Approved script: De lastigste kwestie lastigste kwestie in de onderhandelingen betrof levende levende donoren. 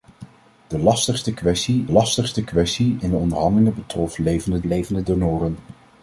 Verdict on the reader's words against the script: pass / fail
pass